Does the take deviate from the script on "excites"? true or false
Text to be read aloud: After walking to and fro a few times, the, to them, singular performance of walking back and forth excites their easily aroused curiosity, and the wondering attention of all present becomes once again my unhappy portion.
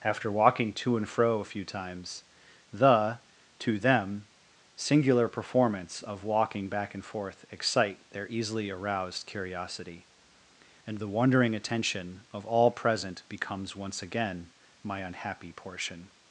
true